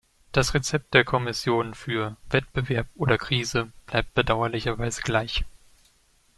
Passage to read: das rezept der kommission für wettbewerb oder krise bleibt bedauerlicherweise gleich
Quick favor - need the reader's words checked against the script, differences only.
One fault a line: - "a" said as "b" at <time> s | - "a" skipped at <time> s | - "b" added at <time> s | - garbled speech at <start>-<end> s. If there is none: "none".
none